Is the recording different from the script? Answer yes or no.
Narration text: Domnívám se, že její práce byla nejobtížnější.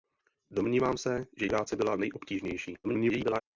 yes